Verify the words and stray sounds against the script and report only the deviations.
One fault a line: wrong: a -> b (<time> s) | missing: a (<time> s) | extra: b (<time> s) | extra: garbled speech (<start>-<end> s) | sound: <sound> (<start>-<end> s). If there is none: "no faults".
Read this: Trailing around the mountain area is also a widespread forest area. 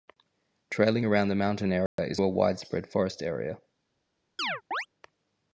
sound: dropout (1.9-2.0 s)
missing: also (2.2 s)
sound: chirp (4.4-4.9 s)